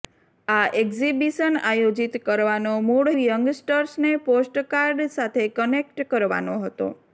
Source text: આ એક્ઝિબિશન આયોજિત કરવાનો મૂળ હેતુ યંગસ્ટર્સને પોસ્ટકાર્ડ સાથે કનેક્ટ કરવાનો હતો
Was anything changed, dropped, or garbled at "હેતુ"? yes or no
yes